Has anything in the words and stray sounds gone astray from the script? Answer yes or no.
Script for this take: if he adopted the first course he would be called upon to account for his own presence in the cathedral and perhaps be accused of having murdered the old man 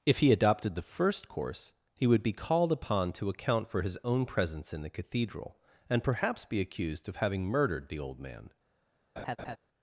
yes